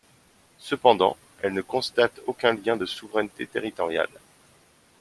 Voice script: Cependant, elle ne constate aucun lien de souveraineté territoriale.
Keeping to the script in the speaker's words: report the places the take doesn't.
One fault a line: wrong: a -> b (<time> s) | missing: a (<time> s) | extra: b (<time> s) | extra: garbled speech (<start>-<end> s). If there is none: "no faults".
no faults